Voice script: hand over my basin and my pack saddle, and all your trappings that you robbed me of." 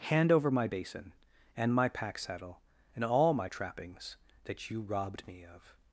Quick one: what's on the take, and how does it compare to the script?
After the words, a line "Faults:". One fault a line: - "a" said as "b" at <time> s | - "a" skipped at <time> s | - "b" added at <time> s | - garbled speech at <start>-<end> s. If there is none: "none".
hand over my basin and my pack saddle, and all my trappings that you robbed me of."
Faults:
- "your" said as "my" at 3.3 s